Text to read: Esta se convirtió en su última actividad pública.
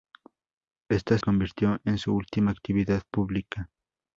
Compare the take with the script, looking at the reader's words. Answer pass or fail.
fail